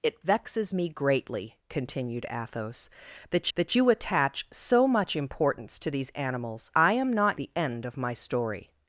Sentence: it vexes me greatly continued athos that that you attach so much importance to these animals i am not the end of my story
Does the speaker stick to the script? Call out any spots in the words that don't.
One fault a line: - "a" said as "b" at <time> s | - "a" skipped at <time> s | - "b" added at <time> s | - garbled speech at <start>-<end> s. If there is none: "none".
none